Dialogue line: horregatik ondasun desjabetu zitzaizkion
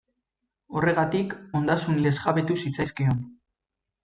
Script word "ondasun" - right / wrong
right